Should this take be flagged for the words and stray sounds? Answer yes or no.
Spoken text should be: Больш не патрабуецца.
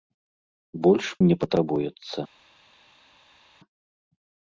no